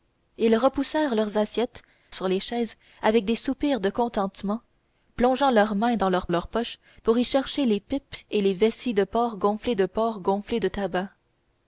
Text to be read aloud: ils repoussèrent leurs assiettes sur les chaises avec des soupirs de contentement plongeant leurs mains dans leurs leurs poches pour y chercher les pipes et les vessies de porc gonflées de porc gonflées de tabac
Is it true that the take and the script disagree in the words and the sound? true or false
false